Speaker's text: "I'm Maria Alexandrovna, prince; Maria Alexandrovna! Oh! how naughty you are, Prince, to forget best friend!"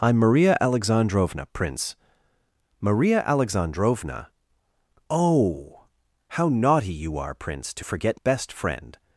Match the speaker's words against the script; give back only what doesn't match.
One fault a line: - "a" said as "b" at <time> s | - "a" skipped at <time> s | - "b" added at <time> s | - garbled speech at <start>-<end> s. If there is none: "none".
none